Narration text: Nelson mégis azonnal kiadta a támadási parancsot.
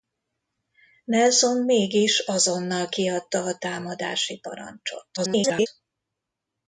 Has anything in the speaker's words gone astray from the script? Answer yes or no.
yes